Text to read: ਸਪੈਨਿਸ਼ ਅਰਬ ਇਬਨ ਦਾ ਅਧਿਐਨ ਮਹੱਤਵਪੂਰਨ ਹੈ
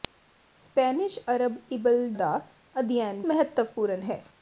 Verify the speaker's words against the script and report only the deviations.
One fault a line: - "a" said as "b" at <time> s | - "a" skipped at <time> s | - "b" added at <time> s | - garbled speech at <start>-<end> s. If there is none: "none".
none